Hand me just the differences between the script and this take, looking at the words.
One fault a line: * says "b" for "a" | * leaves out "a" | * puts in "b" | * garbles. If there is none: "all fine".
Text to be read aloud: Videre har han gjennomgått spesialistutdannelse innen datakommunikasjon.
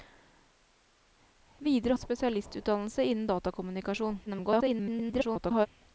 * leaves out "har han gjennomgått"
* garbles